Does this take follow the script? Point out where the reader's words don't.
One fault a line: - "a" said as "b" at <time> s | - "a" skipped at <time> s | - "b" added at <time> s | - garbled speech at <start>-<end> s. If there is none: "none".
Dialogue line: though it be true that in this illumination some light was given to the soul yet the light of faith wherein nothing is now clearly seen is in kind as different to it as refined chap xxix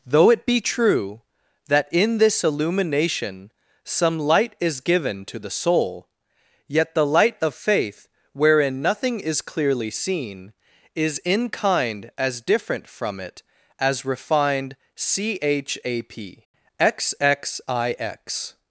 - "was" said as "is" at 4.6 s
- "now" skipped at 9.4 s
- "to" said as "from" at 12.9 s